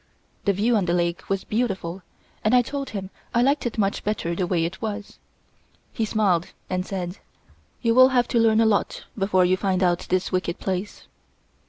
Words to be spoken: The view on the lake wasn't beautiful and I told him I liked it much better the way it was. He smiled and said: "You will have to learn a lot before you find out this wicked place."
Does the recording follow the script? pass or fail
fail